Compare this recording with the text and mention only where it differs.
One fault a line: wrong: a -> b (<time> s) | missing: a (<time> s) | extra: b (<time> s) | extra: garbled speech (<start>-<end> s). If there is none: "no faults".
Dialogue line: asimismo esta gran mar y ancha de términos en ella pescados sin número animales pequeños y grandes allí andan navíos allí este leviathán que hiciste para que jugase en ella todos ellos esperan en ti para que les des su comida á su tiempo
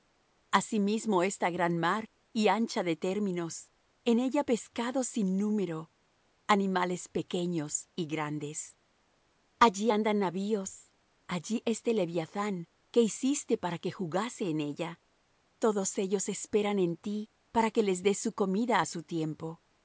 no faults